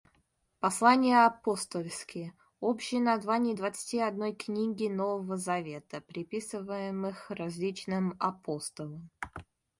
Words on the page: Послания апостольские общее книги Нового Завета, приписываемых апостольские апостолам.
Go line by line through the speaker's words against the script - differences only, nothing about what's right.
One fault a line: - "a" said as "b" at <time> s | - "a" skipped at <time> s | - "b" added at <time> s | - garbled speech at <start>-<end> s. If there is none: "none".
- "название двадцати одной" added at 3.0 s
- "апостольские" said as "различным" at 7.3 s